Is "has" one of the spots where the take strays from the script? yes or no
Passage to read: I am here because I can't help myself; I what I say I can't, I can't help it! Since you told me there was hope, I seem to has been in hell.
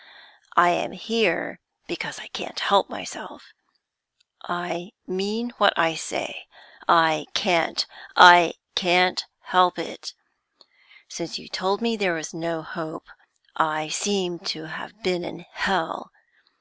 yes